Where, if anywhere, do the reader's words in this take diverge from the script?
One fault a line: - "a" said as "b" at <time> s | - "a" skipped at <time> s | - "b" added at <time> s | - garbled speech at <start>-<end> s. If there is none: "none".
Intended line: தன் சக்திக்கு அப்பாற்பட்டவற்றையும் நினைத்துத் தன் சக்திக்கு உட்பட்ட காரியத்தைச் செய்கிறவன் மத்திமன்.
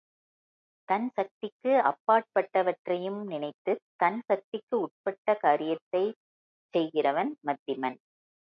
none